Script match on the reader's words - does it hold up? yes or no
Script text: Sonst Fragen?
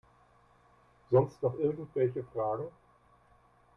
no